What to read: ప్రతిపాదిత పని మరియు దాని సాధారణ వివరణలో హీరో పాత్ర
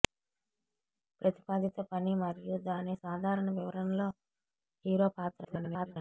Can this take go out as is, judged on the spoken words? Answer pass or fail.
fail